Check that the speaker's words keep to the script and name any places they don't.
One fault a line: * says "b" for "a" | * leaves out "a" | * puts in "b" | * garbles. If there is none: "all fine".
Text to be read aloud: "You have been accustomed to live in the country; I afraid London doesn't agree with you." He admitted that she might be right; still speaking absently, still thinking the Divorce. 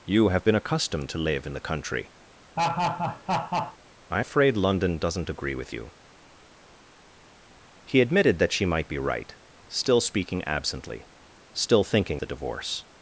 all fine